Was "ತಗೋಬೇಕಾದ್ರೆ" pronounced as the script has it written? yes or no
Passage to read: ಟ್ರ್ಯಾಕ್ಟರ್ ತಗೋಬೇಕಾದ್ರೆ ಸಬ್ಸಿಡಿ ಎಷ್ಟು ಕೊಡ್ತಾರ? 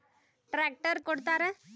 no